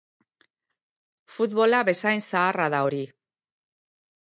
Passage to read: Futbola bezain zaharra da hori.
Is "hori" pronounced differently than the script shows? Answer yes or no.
no